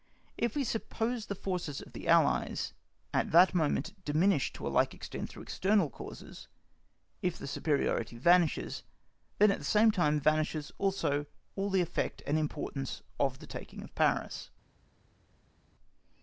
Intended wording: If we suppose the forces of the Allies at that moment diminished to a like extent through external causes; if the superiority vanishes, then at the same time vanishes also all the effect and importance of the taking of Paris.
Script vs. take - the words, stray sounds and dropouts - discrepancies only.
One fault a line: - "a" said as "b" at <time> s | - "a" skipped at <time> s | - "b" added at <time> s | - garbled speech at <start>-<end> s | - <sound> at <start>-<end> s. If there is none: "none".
none